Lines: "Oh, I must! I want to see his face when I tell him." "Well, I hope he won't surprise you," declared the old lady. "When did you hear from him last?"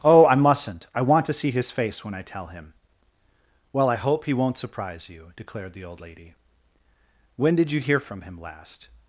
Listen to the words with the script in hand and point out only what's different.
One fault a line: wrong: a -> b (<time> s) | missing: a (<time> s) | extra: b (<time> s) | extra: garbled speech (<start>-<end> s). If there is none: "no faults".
wrong: must -> mustn't (0.3 s)